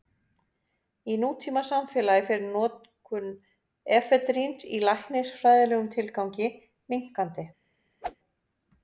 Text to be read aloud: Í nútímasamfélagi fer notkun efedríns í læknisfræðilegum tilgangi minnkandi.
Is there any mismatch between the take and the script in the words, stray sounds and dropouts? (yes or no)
yes